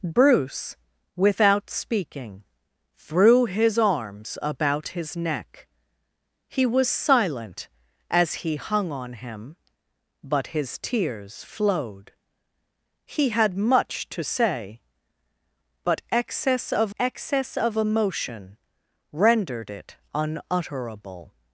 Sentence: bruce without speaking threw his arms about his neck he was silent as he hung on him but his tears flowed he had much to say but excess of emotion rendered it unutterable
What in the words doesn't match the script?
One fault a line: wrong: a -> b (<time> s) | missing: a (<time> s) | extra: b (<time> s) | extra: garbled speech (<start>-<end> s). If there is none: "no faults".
extra: excess of (17.0 s)